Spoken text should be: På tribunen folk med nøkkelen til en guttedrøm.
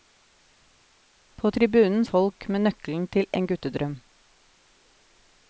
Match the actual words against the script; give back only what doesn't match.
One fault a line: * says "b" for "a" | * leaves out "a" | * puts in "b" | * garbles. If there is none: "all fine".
all fine